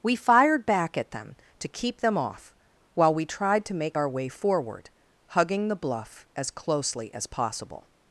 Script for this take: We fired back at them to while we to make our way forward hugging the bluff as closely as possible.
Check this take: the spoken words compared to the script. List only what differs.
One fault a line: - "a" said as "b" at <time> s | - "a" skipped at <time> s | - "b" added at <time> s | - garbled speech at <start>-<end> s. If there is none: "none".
- "keep them off" added at 1.7 s
- "tried" added at 3.2 s